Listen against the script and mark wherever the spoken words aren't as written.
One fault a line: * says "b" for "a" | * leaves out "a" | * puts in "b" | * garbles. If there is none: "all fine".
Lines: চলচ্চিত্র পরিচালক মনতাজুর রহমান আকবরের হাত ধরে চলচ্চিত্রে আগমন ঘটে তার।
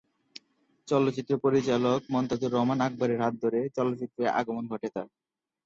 all fine